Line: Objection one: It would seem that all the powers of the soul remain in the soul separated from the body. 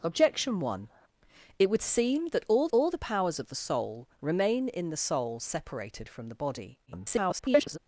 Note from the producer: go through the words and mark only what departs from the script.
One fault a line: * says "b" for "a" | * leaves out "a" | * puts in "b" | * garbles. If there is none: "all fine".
* puts in "all"
* garbles